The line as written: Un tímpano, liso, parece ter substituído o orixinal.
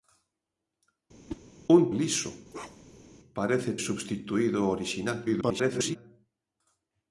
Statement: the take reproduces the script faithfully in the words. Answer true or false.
false